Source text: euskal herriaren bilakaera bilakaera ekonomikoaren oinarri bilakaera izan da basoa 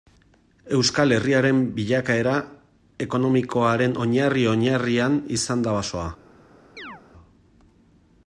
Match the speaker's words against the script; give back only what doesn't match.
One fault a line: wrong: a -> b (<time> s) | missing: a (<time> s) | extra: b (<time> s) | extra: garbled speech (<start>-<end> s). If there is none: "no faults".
missing: bilakaera (2.3 s)
wrong: bilakaera -> oinarrian (4.5 s)